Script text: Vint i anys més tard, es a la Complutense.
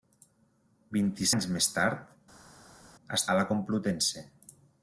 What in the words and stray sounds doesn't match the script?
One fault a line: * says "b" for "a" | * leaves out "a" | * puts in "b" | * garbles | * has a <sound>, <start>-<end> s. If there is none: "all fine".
all fine